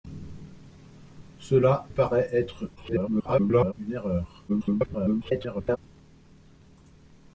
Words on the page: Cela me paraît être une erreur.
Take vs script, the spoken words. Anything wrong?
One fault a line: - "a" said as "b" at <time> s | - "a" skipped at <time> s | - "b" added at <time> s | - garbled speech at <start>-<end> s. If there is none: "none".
- "me" skipped at 1.9 s
- garbled speech at 2.8-3.7 s
- garbled speech at 4.5-5.8 s